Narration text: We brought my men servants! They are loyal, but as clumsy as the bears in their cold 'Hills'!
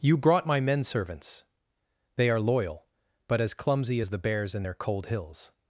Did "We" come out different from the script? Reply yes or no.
yes